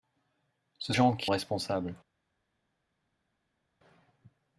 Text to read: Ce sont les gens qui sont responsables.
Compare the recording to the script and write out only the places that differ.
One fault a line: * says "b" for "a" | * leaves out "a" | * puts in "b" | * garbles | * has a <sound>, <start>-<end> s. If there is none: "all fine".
* leaves out "sont les"
* leaves out "sont"